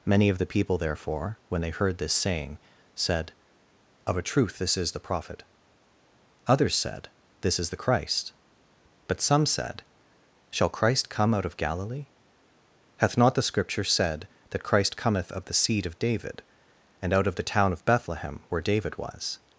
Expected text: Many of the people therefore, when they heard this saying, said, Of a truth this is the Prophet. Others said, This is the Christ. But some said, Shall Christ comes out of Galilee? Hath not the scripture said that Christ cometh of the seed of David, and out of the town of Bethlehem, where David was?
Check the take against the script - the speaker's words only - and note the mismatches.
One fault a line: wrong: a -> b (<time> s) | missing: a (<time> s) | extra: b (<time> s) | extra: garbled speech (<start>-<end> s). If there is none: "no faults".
wrong: comes -> come (11.1 s)